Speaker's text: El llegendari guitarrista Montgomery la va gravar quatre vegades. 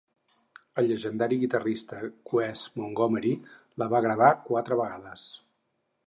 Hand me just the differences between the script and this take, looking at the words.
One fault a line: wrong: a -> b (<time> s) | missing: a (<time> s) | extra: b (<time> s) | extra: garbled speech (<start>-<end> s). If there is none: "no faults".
extra: Wes (2.3 s)